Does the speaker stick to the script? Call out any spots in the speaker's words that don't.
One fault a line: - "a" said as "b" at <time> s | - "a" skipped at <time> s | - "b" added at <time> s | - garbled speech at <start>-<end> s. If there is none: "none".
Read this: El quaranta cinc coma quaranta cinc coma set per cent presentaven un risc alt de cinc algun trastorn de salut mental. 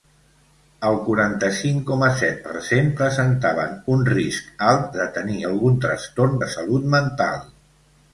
- "quaranta cinc coma" skipped at 2.1 s
- "cinc" said as "tenir" at 5.2 s